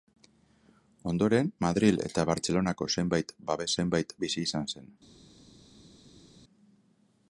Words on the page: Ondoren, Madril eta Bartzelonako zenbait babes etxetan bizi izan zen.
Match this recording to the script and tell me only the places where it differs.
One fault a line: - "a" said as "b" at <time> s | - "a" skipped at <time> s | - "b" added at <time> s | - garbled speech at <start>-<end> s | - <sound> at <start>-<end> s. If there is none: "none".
- "etxetan" said as "zenbait" at 3.8 s